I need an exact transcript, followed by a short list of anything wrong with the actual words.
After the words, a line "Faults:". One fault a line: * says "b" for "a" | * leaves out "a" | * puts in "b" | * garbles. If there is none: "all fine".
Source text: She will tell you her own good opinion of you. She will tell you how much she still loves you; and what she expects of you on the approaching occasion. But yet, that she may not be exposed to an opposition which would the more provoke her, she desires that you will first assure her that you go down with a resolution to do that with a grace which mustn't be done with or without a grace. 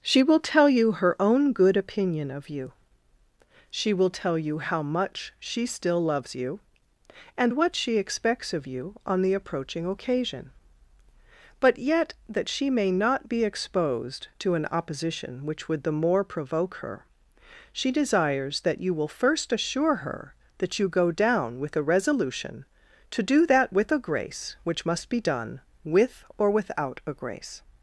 She will tell you her own good opinion of you. She will tell you how much she still loves you; and what she expects of you on the approaching occasion. But yet, that she may not be exposed to an opposition which would the more provoke her, she desires that you will first assure her that you go down with a resolution to do that with a grace which must be done with or without a grace.
Faults:
* says "must" for "mustn't"